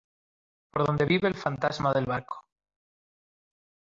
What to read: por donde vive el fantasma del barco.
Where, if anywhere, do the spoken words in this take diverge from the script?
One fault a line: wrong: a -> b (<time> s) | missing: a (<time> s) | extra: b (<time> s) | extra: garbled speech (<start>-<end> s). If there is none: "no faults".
no faults